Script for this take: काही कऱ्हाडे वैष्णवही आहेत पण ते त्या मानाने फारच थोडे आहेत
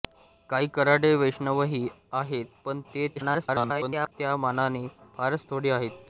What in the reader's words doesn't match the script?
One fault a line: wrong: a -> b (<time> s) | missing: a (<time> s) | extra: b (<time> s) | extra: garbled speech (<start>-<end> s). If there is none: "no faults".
extra: garbled speech (3.2-4.1 s)